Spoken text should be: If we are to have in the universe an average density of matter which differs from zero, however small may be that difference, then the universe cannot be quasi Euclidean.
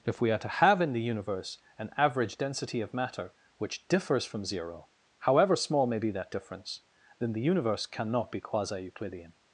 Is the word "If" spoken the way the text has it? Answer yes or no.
yes